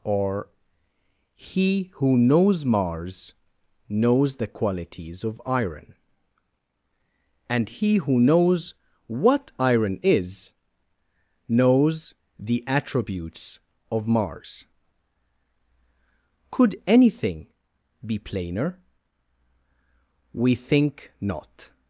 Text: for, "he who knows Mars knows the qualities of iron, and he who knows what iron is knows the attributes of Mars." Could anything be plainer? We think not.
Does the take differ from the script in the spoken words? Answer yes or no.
yes